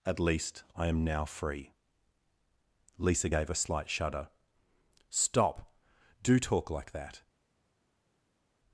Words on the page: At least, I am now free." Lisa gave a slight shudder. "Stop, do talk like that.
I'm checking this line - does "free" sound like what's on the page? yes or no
yes